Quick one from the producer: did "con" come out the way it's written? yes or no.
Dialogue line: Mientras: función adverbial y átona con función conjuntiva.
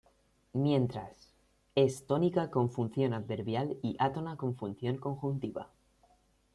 yes